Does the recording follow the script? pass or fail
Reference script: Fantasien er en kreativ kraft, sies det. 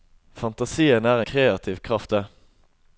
fail